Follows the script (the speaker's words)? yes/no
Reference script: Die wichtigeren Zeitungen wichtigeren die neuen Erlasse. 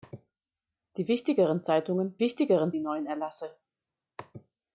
yes